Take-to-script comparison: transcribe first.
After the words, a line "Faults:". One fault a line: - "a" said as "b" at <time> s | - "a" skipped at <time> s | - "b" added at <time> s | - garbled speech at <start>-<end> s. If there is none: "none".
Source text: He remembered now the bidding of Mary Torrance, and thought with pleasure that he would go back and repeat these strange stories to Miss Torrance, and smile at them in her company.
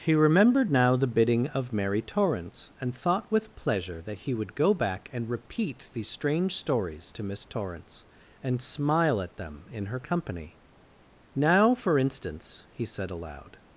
He remembered now the bidding of Mary Torrance, and thought with pleasure that he would go back and repeat these strange stories to Miss Torrance, and smile at them in her company. 'Now, for instance,' he said aloud
Faults:
- "Now for instance he said aloud" added at 11.3 s